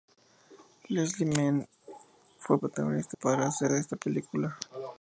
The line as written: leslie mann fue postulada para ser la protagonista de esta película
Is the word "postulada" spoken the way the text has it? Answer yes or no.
no